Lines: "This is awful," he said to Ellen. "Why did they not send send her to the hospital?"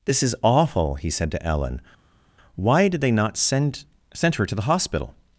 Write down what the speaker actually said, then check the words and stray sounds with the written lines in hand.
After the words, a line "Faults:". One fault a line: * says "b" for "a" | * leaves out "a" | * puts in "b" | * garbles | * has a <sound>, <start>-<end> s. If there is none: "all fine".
"This is awful," he said to Ellen. "Why did they not send send her to the hospital?"
Faults:
all fine